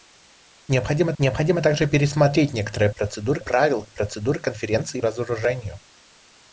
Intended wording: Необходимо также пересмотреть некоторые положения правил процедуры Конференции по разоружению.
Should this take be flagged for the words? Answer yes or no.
yes